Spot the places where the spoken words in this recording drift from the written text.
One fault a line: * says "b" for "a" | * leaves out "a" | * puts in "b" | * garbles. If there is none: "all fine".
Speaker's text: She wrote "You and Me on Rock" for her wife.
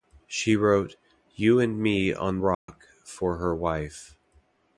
all fine